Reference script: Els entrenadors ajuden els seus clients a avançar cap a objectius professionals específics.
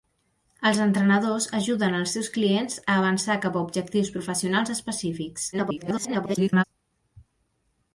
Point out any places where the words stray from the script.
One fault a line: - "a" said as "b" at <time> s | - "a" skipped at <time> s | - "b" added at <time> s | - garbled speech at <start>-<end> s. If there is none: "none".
- garbled speech at 5.5-6.6 s